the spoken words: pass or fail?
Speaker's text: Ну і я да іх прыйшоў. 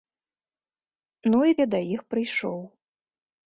pass